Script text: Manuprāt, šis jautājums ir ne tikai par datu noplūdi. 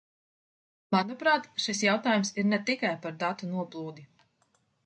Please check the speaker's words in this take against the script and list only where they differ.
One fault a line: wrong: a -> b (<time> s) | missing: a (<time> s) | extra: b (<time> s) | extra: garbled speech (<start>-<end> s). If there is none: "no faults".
no faults